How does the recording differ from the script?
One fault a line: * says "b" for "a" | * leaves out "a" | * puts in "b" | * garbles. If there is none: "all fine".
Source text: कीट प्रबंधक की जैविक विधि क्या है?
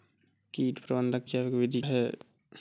* leaves out "की"
* leaves out "क्या"